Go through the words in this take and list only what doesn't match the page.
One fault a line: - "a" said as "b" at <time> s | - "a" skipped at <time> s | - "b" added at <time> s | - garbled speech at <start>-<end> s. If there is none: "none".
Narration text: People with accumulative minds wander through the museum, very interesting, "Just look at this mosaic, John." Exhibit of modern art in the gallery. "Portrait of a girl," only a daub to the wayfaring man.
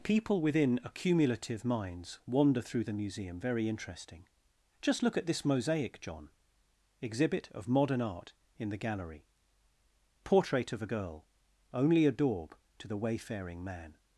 - "with" said as "within" at 0.4 s